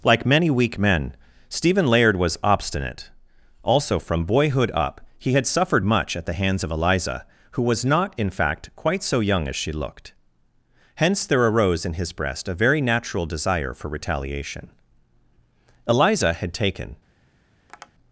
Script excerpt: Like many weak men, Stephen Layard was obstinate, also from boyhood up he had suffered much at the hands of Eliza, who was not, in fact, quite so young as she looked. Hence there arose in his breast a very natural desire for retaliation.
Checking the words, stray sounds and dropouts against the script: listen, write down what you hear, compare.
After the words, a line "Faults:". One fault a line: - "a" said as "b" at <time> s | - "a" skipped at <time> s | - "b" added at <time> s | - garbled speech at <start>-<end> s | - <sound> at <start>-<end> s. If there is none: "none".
Like many weak men, Stephen Layard was obstinate, also from boyhood up he had suffered much at the hands of Eliza, who was not, in fact, quite so young as she looked. Hence there arose in his breast a very natural desire for retaliation. Eliza had taken
Faults:
- "Eliza had taken" added at 15.9 s
- tap at 17.7-17.9 s